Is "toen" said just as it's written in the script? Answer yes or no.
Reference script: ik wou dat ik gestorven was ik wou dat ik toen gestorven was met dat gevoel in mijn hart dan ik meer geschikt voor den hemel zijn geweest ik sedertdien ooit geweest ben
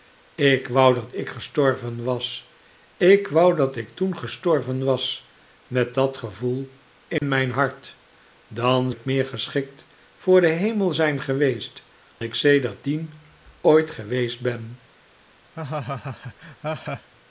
yes